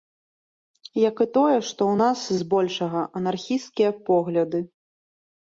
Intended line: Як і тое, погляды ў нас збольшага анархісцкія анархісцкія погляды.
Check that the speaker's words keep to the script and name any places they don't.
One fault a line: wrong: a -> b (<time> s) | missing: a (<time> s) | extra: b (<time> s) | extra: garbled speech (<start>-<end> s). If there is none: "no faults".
wrong: погляды -> што (1.7 s)
missing: анархісцкія (3.9 s)